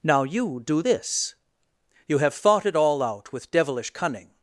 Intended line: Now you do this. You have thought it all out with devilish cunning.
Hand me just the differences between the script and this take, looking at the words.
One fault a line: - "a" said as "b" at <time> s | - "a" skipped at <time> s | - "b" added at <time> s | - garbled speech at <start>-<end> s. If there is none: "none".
none